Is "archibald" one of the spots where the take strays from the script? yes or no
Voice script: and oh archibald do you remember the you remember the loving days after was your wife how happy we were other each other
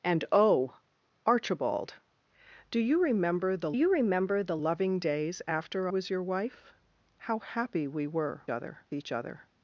no